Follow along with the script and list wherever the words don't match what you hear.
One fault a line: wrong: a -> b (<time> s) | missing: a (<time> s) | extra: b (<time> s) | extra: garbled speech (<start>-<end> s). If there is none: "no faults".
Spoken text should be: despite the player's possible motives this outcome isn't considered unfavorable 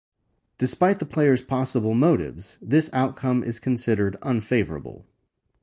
wrong: isn't -> is (3.4 s)